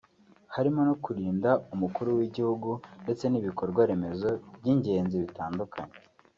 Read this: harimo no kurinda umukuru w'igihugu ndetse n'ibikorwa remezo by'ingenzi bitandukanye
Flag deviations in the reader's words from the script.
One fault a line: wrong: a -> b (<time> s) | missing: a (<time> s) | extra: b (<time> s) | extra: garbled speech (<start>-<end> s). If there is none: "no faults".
no faults